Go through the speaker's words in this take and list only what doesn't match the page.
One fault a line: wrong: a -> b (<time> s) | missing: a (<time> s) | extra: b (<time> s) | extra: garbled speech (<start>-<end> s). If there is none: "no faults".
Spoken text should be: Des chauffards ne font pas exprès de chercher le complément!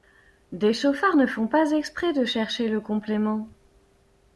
no faults